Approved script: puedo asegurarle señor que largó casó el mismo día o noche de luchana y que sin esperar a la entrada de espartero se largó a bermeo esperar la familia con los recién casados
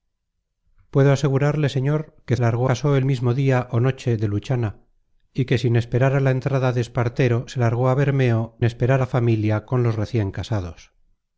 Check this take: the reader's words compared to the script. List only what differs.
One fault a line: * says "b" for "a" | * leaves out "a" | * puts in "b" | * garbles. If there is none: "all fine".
all fine